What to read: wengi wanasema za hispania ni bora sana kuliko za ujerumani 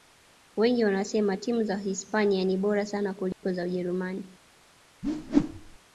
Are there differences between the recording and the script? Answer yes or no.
yes